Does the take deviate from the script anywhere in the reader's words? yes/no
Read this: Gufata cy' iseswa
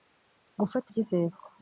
no